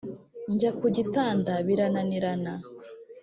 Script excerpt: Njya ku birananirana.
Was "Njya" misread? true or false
false